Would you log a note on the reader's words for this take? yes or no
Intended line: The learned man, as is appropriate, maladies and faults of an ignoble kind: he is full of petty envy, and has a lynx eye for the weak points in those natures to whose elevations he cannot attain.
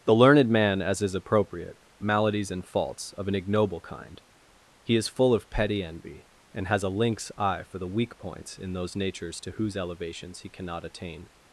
no